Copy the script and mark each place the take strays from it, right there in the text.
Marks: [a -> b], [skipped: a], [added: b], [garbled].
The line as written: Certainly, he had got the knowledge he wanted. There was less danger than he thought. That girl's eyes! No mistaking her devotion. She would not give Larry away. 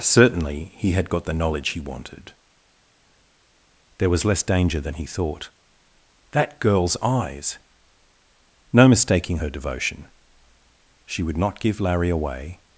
Certainly, he had got the knowledge he wanted. There was less danger than he thought. That girl's eyes! No mistaking her devotion. She would not give Larry away.